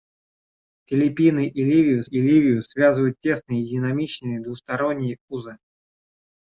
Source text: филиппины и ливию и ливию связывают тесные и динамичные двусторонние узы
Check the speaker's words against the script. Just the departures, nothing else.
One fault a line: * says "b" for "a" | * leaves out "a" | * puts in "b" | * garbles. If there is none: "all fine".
all fine